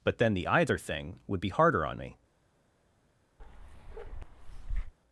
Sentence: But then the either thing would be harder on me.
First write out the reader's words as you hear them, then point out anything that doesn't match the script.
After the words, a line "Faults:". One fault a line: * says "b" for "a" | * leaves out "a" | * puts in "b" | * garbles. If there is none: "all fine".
But then the either thing would be harder on me.
Faults:
all fine